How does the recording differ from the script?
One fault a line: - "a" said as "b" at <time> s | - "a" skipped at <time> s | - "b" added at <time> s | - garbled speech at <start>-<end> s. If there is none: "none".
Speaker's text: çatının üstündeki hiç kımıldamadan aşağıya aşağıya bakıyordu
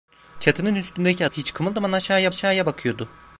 none